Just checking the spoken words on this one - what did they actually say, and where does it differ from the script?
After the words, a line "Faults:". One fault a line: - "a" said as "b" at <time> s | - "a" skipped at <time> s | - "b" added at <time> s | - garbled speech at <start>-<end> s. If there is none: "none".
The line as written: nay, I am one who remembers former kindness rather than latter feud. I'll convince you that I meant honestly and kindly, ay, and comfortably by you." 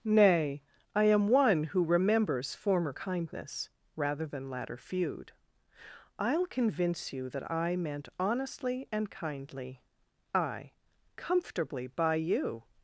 nay, I am one who remembers former kindness rather than latter feud. I'll convince you that I meant honestly and kindly, ay, comfortably by you."
Faults:
- "and" skipped at 10.7 s